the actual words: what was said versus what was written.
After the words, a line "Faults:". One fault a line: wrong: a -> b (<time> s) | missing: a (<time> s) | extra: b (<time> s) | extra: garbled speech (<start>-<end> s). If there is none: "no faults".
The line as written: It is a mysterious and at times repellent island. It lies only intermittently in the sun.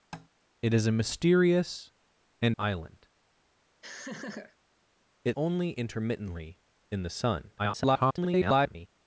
It is a mysterious and island. It only intermittently in the sun. [garbled]
Faults:
missing: at times repellent (2.6 s)
missing: lies (5.4 s)
extra: garbled speech (7.6-8.9 s)